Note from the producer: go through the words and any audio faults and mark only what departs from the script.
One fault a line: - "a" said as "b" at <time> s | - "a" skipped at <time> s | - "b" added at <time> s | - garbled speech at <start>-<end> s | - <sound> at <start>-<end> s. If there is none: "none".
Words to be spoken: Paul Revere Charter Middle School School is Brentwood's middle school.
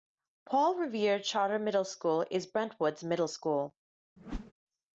- "School" skipped at 2.2 s
- whoosh at 4.2-4.5 s